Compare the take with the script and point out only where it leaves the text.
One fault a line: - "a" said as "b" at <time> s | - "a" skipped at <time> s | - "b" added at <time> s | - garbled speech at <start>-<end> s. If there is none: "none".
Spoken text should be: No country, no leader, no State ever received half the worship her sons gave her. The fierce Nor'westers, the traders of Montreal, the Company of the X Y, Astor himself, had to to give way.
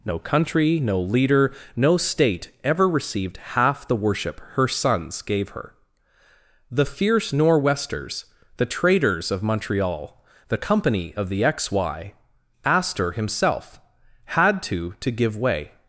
none